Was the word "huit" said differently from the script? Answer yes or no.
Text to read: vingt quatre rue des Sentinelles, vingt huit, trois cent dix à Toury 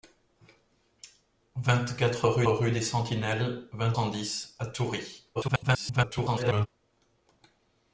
yes